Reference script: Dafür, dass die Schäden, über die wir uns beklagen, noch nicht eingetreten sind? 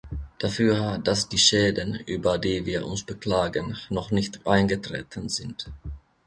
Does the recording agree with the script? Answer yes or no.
yes